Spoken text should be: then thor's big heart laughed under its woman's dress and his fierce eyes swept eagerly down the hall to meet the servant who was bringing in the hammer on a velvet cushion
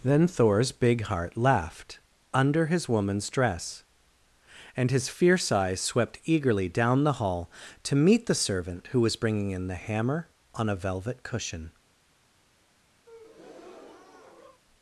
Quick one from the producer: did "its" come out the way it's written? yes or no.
no